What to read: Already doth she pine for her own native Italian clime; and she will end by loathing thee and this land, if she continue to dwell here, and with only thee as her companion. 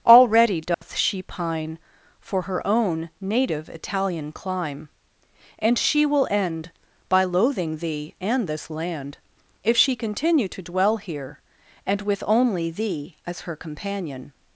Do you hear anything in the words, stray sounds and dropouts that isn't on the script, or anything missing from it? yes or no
yes